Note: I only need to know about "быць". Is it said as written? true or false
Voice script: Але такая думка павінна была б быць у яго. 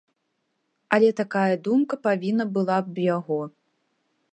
false